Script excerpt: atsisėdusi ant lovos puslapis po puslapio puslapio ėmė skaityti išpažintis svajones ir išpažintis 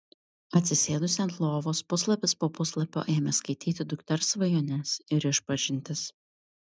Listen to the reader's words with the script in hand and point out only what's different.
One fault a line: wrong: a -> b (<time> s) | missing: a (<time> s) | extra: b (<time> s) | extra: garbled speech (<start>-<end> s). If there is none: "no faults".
missing: puslapio (3.0 s)
wrong: išpažintis -> dukters (3.9 s)